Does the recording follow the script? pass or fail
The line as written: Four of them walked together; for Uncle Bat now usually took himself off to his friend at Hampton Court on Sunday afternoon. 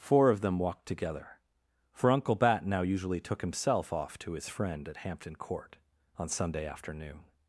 pass